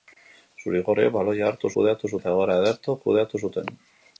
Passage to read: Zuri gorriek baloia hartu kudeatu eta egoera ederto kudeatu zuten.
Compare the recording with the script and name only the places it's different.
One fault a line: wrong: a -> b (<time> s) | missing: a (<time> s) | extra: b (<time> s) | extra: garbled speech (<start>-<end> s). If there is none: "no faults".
no faults